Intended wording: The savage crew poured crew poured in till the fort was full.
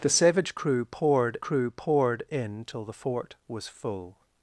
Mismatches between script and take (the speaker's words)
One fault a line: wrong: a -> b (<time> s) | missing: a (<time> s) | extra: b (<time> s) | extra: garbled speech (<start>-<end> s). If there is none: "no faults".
no faults